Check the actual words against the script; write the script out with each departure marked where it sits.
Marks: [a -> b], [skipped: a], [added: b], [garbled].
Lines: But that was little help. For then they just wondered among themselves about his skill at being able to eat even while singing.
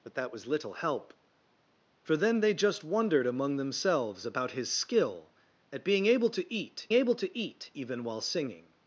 But that was little help. For then they just wondered among themselves about his skill at being able to eat [added: able to eat] even while singing.